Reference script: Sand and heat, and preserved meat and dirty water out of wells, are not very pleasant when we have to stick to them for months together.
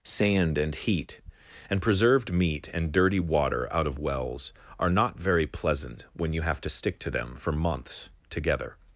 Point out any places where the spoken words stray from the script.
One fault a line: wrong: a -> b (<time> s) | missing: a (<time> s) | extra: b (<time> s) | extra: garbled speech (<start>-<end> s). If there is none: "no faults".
wrong: we -> you (6.3 s)